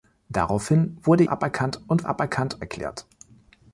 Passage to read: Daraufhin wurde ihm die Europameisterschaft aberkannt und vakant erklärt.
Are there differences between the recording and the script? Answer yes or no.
yes